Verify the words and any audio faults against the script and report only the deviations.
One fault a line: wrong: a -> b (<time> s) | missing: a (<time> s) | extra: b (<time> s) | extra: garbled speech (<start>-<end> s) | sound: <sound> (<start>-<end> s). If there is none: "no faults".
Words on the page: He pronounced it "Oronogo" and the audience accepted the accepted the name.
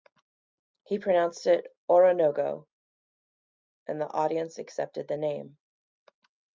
missing: accepted the (5.2 s)